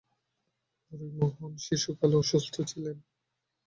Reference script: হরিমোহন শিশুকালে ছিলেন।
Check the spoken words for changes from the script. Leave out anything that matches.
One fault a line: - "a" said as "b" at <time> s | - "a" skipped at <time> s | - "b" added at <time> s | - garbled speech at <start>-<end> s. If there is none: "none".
- "অসুস্থ" added at 2.2 s